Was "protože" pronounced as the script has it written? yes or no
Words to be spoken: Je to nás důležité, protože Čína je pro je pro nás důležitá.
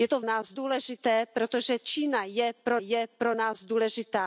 yes